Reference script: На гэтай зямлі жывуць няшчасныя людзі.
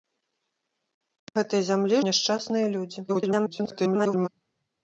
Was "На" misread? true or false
false